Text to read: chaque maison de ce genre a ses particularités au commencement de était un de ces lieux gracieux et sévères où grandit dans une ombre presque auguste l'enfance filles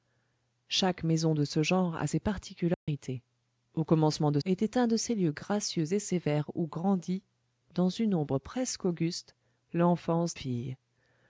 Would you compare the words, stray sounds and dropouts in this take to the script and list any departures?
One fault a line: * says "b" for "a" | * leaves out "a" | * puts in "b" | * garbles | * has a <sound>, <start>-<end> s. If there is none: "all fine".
* has a dropout, 2.7-2.9 s